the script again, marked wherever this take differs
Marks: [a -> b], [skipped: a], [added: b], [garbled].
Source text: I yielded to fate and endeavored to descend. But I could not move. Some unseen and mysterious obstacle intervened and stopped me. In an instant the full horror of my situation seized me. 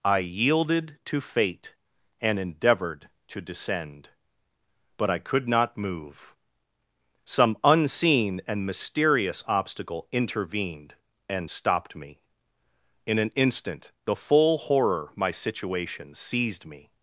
I yielded to fate and endeavored to descend. But I could not move. Some unseen and mysterious obstacle intervened and stopped me. In an instant the full horror [skipped: of] my situation seized me.